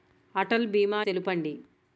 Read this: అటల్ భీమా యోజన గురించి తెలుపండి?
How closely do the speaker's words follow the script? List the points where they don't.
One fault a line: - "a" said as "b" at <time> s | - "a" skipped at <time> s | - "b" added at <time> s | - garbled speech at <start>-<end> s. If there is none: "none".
- "యోజన గురించి" skipped at 1.0 s